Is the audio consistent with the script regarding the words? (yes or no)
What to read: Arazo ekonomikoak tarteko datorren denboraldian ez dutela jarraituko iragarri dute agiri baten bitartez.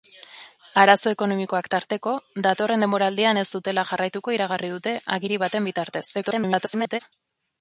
no